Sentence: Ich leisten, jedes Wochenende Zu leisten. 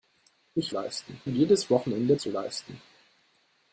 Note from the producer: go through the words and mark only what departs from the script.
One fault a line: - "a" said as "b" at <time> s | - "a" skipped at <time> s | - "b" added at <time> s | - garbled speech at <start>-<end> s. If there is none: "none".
none